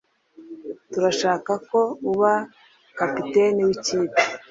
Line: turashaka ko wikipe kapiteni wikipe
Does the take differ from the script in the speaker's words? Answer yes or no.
yes